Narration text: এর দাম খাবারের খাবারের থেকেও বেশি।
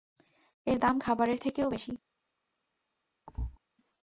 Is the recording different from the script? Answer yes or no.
yes